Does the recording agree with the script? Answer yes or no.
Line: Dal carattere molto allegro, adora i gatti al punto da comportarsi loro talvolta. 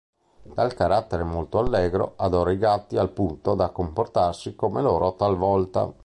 no